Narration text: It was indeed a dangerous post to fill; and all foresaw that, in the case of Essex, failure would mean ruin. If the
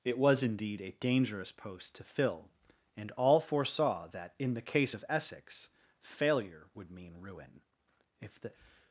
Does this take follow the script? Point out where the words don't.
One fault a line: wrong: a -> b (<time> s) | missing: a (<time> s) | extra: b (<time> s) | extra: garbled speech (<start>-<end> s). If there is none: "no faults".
no faults